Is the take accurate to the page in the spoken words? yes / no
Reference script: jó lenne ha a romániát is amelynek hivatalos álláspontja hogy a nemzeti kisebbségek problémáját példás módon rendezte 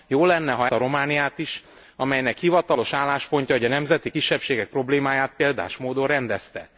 yes